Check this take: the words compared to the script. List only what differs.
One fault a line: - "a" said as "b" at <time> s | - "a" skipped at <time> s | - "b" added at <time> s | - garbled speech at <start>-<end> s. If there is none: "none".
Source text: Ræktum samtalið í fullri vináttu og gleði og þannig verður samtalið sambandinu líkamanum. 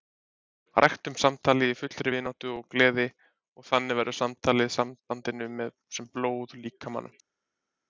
- "sem blóð" added at 6.0 s